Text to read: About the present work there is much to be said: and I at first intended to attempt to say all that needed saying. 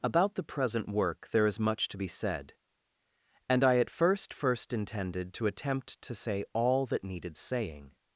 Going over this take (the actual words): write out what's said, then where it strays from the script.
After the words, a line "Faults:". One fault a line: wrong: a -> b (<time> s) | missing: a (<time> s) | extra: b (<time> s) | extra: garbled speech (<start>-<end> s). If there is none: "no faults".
About the present work there is much to be said: and I at first first intended to attempt to say all that needed saying.
Faults:
extra: first (4.3 s)